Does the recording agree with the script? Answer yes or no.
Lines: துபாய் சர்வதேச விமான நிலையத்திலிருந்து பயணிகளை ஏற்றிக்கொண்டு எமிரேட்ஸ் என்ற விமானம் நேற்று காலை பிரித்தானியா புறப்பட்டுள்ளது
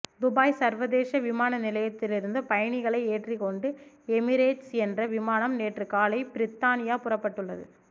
yes